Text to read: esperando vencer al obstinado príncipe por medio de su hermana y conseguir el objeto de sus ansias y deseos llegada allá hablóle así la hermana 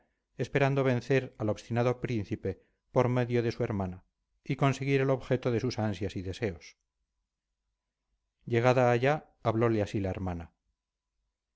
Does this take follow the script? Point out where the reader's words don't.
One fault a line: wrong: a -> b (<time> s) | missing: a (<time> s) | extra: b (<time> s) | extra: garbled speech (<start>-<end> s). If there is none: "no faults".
no faults